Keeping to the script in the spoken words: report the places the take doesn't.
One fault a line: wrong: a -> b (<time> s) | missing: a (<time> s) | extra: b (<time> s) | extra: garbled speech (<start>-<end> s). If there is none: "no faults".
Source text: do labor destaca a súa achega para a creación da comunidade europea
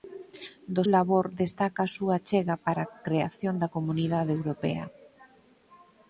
no faults